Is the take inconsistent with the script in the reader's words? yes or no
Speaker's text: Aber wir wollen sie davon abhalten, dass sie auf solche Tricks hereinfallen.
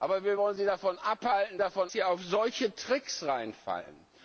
yes